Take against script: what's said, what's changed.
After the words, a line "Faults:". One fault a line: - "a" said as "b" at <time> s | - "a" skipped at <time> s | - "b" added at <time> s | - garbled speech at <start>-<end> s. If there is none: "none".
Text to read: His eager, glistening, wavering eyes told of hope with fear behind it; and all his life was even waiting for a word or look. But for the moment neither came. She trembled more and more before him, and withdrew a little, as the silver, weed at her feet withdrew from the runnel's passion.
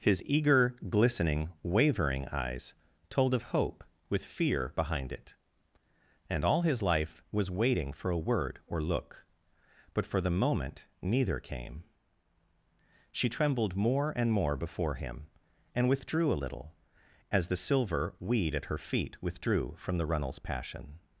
His eager, glistening, wavering eyes told of hope with fear behind it; and all his life was waiting for a word or look. But for the moment neither came. She trembled more and more before him, and withdrew a little, as the silver, weed at her feet withdrew from the runnel's passion.
Faults:
- "even" skipped at 7.5 s